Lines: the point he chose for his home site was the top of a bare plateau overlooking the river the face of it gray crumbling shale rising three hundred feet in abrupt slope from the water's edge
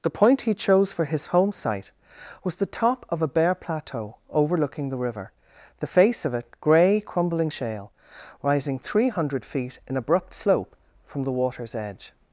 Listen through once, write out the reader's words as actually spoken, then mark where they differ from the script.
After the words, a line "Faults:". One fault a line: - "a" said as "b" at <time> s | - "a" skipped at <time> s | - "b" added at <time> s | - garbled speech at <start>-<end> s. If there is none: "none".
the point he chose for his home site was the top of a bare plateau overlooking the river the face of it gray crumbling shale rising three hundred feet in abrupt slope from the water's edge
Faults:
none